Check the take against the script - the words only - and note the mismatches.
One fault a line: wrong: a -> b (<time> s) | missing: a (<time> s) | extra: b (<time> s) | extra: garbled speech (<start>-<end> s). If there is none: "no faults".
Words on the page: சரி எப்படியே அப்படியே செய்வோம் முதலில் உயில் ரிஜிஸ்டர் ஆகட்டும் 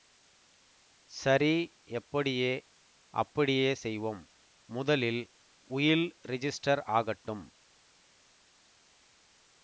no faults